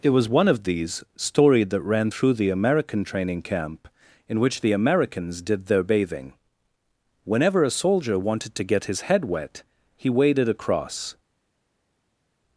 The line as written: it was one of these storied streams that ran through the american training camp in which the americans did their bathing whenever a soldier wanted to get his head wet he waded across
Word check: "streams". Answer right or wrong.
wrong